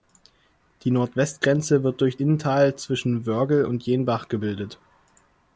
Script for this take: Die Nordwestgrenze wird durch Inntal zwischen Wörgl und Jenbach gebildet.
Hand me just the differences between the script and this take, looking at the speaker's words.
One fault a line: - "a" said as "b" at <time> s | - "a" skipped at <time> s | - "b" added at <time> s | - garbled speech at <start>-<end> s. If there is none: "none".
none